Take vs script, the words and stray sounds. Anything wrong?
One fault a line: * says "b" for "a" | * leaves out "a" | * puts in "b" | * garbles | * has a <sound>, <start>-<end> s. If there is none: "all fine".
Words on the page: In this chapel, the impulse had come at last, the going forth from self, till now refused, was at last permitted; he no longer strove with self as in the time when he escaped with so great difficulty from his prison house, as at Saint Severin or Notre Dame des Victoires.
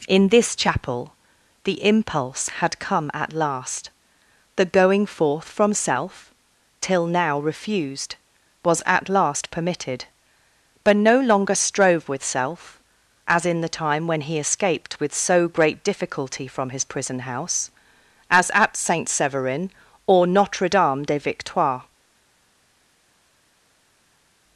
* says "but" for "he"